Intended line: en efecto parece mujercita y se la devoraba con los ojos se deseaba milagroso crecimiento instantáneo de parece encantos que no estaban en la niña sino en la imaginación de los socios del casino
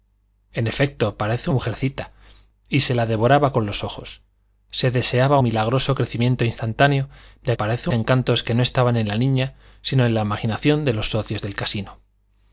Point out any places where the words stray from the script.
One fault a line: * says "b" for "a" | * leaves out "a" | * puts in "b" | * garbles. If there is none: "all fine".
all fine